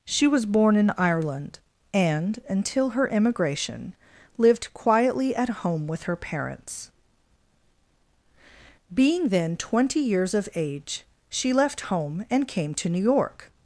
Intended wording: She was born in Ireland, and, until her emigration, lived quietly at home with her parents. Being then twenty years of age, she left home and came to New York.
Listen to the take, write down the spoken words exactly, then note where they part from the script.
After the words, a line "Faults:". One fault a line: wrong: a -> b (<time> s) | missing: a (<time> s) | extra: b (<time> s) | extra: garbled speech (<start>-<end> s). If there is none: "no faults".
She was born in Ireland, and, until her emigration, lived quietly at home with her parents. Being then twenty years of age, she left home and came to New York.
Faults:
no faults